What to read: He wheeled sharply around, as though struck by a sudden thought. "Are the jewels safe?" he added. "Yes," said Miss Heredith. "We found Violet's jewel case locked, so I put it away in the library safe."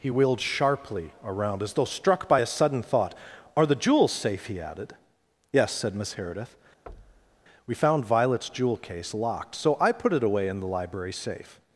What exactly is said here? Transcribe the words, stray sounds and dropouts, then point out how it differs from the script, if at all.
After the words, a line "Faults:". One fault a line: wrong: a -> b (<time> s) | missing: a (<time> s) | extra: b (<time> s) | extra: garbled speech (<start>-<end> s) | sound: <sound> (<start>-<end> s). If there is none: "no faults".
He wheeled sharply around, as though struck by a sudden thought. "Are the jewels safe?" he added. "Yes," said Miss Heredith. "We found Violet's jewel case locked, so I put it away in the library safe."
Faults:
sound: thud (6.9-7.4 s)